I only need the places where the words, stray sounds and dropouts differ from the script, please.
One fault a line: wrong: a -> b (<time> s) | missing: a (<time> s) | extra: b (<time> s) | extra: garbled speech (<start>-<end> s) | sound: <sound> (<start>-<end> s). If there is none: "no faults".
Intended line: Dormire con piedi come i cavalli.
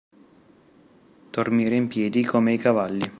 wrong: con -> in (1.7 s)